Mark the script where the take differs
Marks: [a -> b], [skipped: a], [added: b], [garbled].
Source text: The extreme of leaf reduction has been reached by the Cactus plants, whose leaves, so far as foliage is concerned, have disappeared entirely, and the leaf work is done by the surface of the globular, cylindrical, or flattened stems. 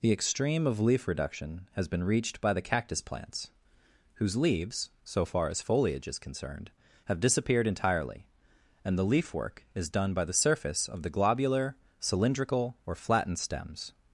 The extreme of leaf reduction has been reached by the Cactus plants, whose leaves, so far as foliage is concerned, have disappeared entirely, and the leaf work is done by the surface of the globular, cylindrical, or flattened stems.